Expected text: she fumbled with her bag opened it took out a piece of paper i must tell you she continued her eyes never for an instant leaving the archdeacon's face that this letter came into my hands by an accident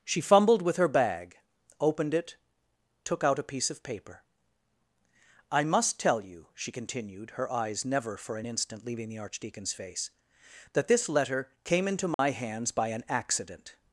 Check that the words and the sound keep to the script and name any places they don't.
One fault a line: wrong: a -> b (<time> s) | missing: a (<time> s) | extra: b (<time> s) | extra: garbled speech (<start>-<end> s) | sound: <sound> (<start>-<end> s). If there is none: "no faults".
sound: dropout (12.1-12.2 s)